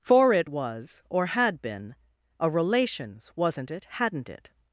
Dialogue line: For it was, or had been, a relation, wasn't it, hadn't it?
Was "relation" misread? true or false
true